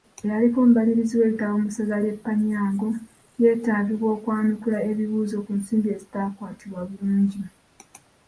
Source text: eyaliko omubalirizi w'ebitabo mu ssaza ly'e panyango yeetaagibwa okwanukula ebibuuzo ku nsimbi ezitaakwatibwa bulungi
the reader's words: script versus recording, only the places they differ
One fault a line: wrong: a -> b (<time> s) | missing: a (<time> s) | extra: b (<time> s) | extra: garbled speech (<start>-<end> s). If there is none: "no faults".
no faults